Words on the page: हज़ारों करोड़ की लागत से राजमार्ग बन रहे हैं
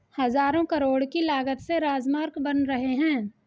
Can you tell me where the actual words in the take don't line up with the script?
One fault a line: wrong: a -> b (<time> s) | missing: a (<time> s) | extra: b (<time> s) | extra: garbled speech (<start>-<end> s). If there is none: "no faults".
no faults